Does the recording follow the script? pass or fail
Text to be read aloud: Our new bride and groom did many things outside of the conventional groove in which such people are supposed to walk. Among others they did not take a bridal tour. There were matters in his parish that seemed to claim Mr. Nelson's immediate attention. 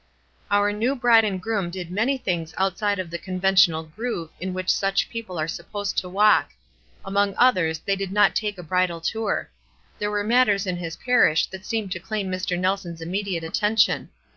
pass